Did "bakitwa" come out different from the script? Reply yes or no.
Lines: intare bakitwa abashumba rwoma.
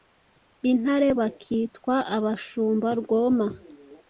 no